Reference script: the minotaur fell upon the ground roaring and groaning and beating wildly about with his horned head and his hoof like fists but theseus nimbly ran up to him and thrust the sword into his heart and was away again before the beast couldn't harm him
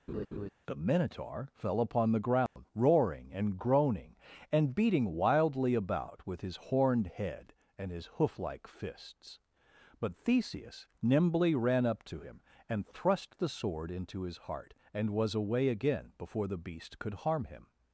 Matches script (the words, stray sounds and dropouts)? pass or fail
fail